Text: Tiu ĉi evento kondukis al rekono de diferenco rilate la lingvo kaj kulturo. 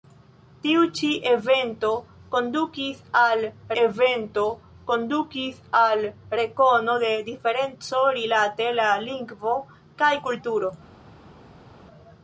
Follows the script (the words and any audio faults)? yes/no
no